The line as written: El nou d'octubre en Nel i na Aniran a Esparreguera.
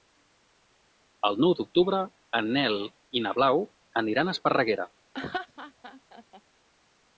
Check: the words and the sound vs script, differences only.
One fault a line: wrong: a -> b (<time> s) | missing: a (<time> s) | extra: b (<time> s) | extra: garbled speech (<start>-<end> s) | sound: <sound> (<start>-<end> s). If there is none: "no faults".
extra: Blau (3.4 s)
sound: laugh (5.1-6.4 s)